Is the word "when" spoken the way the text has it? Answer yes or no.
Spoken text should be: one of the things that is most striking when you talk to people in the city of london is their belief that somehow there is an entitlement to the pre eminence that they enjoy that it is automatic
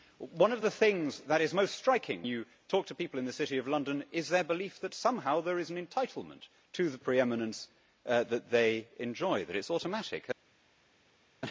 no